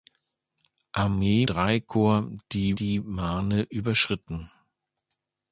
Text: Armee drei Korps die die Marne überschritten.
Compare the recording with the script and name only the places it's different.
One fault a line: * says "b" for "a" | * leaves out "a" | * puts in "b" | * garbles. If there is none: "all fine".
all fine